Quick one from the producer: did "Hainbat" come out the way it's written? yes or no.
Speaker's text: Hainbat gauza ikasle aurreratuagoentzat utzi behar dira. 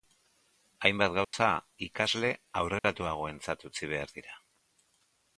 yes